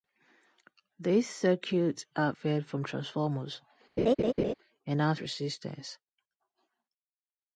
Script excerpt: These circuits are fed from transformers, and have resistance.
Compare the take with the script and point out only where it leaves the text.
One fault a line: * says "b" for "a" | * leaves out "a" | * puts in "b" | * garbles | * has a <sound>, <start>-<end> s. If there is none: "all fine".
* has a laugh, 4.0-4.5 s